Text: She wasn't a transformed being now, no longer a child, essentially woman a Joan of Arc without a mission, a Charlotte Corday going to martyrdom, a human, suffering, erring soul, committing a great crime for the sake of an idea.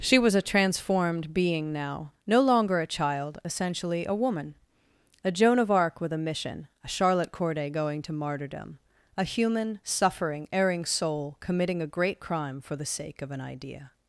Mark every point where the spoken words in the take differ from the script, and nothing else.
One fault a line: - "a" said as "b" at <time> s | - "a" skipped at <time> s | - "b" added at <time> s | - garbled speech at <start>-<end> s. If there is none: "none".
- "wasn't" said as "was" at 0.2 s
- "a" added at 4.0 s
- "without" said as "with" at 6.0 s